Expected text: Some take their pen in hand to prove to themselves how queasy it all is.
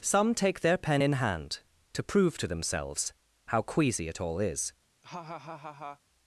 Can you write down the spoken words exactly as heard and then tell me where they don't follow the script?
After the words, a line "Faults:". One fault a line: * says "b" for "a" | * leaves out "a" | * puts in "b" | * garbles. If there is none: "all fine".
Some take their pen in hand to prove to themselves how queasy it all is.
Faults:
all fine